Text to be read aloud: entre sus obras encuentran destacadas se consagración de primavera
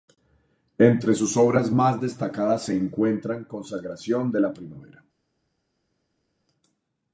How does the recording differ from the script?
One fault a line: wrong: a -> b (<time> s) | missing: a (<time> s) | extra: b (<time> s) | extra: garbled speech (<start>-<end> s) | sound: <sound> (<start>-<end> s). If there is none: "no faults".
wrong: encuentran -> más (1.7 s)
extra: encuentran (2.8 s)
extra: la (4.4 s)